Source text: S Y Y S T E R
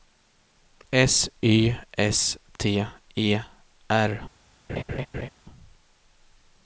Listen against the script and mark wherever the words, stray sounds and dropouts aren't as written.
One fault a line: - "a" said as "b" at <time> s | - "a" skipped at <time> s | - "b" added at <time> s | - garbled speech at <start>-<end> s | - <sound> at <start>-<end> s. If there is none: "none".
- "Y" skipped at 1.8 s
- laugh at 4.7-5.3 s